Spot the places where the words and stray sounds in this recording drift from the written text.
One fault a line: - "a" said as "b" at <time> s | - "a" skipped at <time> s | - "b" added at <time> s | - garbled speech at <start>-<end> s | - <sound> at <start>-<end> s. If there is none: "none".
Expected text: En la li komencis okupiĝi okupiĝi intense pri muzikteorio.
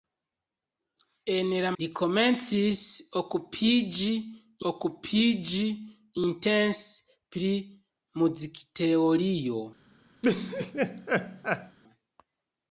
- laugh at 10.2-11.8 s